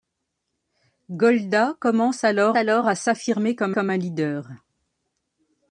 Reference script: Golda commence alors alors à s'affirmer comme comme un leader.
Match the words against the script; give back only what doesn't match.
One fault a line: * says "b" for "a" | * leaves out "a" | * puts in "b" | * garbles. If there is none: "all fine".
all fine